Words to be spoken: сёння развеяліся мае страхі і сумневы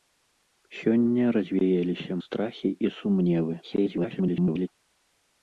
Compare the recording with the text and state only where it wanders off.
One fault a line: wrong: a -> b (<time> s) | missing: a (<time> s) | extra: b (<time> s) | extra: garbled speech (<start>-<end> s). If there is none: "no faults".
missing: мае (2.1 s)
extra: garbled speech (3.6-4.7 s)